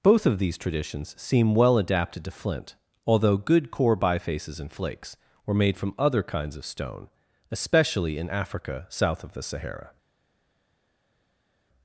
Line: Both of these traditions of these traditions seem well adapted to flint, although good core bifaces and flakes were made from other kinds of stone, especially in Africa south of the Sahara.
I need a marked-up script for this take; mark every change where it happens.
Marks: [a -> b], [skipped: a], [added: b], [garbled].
Both of these traditions [skipped: of these traditions] seem well adapted to flint, although good core bifaces and flakes were made from other kinds of stone, especially in Africa south of the Sahara.